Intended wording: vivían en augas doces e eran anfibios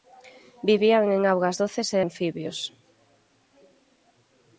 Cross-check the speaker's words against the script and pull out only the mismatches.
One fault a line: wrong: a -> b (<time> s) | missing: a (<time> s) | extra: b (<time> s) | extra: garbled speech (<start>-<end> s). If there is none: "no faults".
missing: eran (2.0 s)